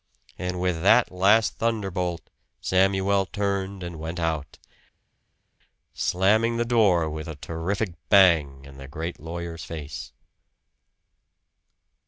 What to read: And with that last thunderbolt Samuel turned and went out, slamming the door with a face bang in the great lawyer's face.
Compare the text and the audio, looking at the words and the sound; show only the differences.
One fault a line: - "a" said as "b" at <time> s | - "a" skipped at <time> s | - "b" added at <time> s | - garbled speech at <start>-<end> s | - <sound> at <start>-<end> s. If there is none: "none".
- "face" said as "terrific" at 7.3 s